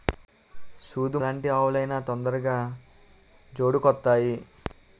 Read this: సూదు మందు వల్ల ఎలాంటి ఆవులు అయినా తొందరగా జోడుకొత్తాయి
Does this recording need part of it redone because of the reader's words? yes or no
yes